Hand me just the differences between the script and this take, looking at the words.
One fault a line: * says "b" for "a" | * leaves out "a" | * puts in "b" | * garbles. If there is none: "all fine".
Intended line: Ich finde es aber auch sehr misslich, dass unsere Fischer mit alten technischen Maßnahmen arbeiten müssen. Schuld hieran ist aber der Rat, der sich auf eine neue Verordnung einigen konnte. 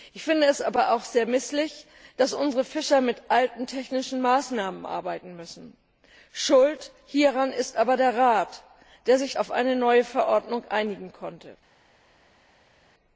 all fine